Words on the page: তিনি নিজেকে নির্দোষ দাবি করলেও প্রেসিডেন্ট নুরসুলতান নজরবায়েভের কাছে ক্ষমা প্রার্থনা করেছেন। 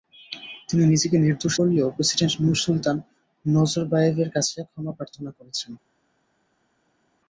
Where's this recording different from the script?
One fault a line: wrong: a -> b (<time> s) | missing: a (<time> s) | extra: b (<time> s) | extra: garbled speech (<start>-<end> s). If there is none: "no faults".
missing: দাবি (1.5 s)